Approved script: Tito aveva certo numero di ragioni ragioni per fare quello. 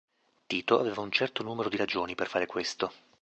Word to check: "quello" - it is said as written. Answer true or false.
false